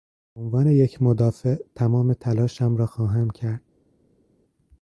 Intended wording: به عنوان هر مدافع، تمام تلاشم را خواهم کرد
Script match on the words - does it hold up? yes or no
no